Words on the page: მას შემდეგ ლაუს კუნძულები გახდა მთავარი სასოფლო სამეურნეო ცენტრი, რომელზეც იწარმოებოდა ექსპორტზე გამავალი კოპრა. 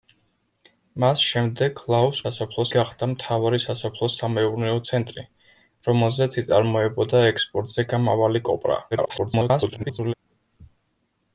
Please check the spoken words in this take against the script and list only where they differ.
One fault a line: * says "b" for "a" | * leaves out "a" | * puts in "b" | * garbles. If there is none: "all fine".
* says "სასოფლო" for "კუნძულები"
* garbles